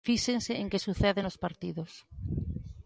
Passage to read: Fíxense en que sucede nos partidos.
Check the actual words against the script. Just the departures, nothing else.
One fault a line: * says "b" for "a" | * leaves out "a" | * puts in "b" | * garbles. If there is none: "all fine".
all fine